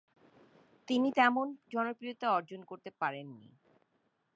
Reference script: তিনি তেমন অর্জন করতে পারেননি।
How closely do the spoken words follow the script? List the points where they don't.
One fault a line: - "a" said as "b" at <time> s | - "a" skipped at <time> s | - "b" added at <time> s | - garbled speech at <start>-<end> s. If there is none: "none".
- "জনপ্রিয়তা" added at 1.7 s